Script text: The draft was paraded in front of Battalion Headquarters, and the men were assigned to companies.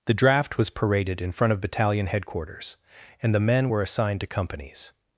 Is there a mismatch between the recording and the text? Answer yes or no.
no